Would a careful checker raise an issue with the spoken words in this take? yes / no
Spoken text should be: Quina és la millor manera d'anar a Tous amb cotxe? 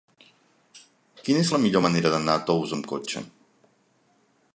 no